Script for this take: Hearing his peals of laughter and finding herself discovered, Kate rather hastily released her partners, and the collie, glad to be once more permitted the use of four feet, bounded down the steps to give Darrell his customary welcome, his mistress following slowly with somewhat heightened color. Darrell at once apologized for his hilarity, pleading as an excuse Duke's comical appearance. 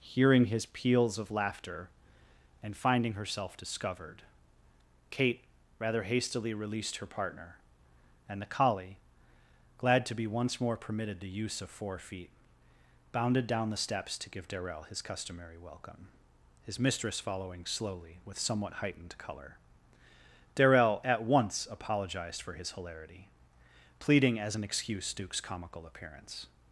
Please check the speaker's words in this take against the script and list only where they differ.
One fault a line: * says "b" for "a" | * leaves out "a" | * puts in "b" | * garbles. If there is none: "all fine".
* says "partner" for "partners"